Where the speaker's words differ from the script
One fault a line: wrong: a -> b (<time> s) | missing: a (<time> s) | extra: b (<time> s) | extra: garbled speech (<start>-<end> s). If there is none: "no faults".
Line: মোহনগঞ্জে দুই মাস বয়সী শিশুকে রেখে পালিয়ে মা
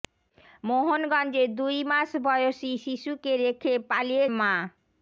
no faults